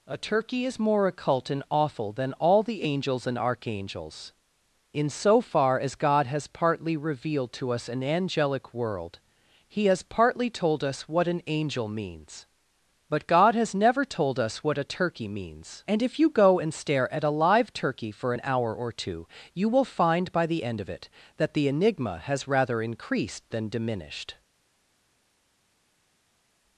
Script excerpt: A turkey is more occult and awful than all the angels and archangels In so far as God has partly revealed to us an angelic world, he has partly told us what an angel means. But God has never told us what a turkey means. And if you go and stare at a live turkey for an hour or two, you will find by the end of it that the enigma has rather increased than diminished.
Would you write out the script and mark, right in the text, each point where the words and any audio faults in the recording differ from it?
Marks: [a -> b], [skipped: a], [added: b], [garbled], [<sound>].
A turkey is more occult and awful than all the angels and archangels In so far as God has partly revealed to us an angelic world, he has partly told us what an angel means. But God has never told us what a turkey means. And if you go and stare at a live turkey for an hour or two, you will find by the end of it that the enigma has rather increased than diminished.